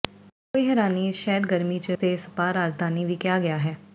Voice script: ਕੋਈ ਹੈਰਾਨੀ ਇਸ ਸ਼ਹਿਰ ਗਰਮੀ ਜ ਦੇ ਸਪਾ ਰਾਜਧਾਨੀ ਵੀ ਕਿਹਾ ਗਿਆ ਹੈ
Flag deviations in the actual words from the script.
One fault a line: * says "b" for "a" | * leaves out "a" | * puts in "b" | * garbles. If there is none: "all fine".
all fine